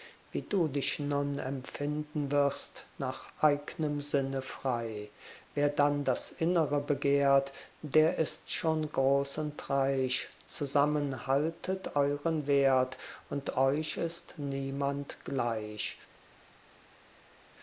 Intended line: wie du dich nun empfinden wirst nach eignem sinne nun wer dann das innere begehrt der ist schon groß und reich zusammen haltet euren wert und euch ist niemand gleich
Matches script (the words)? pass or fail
fail